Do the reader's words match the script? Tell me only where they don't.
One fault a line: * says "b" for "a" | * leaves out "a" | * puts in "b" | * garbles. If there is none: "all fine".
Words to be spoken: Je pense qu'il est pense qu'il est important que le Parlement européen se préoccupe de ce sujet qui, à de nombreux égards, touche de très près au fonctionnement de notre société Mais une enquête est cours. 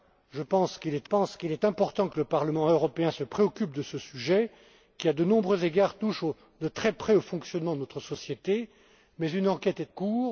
all fine